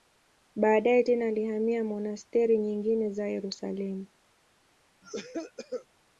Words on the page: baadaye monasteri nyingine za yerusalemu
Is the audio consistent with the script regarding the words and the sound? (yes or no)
no